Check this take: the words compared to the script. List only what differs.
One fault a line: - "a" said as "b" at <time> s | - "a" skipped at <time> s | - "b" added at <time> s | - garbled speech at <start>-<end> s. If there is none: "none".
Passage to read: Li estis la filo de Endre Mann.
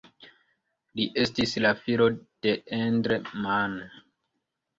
none